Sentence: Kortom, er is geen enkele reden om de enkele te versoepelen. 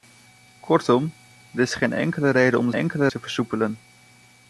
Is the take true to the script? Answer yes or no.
yes